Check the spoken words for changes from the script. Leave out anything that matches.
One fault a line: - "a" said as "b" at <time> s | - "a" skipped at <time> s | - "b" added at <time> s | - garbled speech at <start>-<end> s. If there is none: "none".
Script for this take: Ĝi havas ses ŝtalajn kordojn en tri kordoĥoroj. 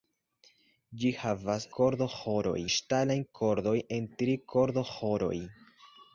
- "ses" said as "kordoĥoroj" at 1.8 s